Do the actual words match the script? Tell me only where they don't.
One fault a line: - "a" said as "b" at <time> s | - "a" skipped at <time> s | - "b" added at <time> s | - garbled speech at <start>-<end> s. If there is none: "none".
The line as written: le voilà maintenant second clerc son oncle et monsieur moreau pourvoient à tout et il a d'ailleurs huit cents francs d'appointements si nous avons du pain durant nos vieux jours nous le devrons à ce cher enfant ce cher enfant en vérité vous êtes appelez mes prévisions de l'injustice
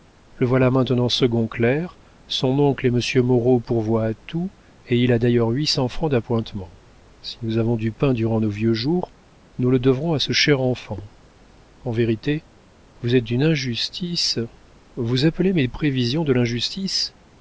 - "ce cher enfant" skipped at 11.0 s
- "d'une injustice vous" added at 13.2 s